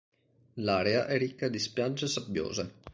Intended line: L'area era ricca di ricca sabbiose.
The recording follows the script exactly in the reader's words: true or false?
false